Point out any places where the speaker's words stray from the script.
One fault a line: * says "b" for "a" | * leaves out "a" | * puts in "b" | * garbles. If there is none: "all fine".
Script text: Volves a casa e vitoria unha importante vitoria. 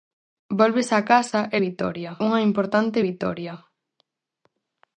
all fine